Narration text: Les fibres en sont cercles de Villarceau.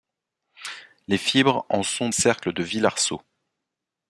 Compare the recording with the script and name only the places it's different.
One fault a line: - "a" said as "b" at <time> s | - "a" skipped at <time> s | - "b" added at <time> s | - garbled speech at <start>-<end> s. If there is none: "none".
none